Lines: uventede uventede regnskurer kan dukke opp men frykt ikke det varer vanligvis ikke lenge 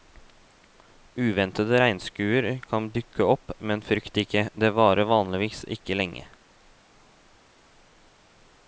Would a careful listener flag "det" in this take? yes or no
no